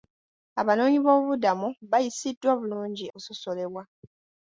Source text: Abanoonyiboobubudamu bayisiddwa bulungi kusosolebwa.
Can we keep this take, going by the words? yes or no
yes